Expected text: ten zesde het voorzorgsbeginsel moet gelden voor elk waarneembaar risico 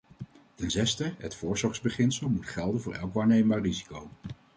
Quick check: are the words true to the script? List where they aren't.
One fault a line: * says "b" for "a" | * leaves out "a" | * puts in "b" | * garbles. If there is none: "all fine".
all fine